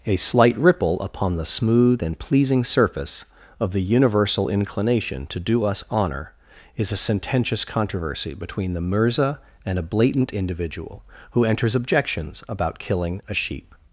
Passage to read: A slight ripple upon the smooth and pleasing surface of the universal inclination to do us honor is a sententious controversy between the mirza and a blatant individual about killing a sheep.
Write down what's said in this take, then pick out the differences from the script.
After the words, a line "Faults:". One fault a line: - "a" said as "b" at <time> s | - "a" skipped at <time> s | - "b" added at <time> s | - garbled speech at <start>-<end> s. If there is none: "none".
A slight ripple upon the smooth and pleasing surface of the universal inclination to do us honor is a sententious controversy between the mirza and a blatant individual who enters objections about killing a sheep.
Faults:
- "who enters objections" added at 11.3 s